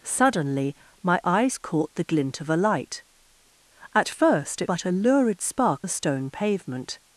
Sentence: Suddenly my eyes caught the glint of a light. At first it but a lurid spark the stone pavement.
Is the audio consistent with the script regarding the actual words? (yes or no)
yes